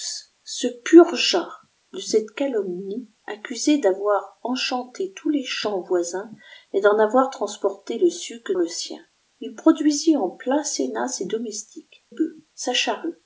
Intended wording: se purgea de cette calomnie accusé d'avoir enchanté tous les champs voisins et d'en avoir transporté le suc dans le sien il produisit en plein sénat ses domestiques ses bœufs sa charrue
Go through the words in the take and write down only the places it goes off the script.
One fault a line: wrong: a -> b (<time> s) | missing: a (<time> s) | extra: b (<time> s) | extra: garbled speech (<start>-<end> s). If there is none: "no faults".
missing: dans (8.5 s)
missing: ses (12.0 s)